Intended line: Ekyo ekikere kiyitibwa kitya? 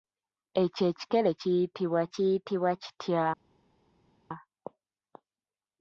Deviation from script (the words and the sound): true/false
true